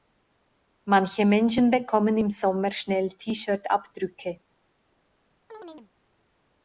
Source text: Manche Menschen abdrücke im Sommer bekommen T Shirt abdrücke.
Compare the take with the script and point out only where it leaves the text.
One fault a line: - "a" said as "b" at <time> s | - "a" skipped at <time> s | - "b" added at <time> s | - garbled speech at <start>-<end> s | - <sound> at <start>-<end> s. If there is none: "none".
- "abdrücke" said as "bekommen" at 1.7 s
- "bekommen" said as "schnell" at 2.7 s
- chirp at 5.5-5.9 s